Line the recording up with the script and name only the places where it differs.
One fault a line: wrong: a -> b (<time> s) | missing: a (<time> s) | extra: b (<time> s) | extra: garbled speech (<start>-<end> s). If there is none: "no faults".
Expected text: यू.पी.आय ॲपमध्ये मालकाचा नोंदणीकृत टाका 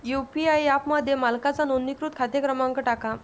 extra: खाते क्रमांक (2.1 s)